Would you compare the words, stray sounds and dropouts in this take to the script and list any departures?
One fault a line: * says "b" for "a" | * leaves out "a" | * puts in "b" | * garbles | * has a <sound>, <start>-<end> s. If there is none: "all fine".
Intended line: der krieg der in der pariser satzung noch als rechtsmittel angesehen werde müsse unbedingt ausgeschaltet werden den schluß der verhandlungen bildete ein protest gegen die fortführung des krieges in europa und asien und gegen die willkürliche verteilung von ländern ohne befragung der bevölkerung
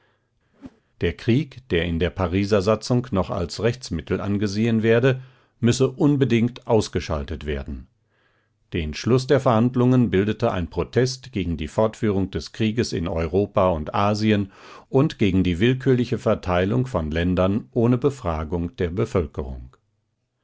* has a whoosh, 0.5-0.8 s